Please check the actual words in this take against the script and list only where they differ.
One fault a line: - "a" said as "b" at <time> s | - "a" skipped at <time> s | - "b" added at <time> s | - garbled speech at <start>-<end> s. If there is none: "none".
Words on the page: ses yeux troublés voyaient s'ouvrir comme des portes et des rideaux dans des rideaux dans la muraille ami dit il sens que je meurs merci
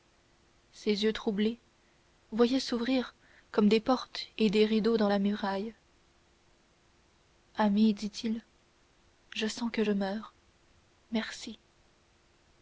- "des rideaux dans" skipped at 5.1 s
- "je" added at 9.3 s